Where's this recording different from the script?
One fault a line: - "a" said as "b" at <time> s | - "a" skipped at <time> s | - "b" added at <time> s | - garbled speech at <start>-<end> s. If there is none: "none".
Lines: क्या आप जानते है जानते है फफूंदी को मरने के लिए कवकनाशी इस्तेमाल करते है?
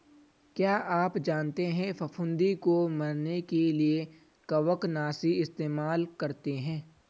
- "जानते है" skipped at 1.9 s